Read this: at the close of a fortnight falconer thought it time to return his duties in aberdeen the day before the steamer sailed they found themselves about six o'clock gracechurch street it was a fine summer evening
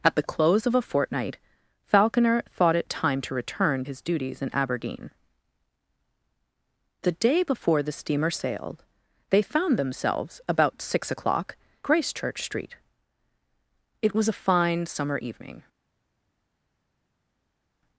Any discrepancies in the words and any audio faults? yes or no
no